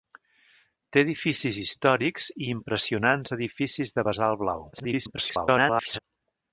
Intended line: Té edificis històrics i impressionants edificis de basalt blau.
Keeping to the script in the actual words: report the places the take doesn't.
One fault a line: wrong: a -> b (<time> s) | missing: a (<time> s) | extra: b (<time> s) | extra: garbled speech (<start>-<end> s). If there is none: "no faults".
extra: garbled speech (4.7-6.0 s)